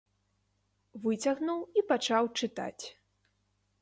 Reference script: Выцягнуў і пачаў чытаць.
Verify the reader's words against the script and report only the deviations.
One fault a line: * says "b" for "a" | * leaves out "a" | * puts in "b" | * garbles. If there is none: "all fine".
all fine